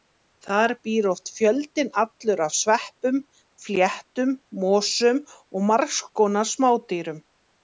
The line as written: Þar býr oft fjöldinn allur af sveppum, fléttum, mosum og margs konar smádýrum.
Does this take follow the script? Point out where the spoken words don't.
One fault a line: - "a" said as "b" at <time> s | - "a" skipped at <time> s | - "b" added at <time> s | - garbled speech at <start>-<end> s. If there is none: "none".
none